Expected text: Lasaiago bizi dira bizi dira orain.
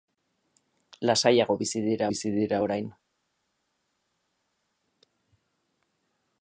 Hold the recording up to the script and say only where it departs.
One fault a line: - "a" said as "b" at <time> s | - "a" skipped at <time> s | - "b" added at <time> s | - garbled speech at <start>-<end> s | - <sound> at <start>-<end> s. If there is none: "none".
none